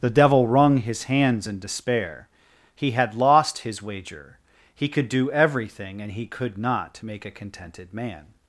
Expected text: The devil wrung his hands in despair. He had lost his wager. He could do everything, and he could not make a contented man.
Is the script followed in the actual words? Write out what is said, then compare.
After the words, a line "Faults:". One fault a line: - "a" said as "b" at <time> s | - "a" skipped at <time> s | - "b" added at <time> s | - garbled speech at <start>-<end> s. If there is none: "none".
The devil wrung his hands in despair. He had lost his wager. He could do everything, and he could not make a contented man.
Faults:
none